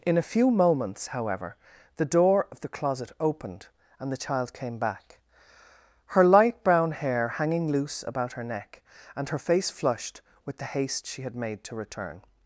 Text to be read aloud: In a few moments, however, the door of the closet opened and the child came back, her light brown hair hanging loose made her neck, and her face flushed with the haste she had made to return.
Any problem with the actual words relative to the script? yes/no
yes